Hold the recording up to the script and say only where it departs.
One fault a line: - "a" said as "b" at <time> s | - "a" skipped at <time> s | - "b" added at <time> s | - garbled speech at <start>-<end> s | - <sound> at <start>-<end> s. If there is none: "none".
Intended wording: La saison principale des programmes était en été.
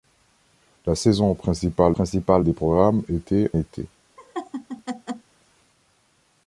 - "principale" added at 1.9 s
- "en" skipped at 3.5 s
- laugh at 4.2-5.3 s